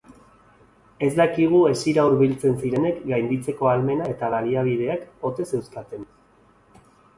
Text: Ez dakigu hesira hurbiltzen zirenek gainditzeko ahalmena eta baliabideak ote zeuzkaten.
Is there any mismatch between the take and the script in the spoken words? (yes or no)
no